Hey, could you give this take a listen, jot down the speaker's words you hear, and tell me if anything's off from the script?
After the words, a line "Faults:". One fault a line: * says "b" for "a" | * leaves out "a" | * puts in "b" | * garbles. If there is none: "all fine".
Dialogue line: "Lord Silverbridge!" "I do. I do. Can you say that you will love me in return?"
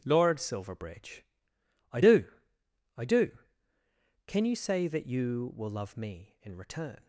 "Lord Silverbridge!" "I do. I do. Can you say that you will love me in return?"
Faults:
all fine